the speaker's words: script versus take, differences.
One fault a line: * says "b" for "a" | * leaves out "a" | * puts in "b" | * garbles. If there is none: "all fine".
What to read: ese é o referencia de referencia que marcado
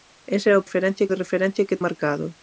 all fine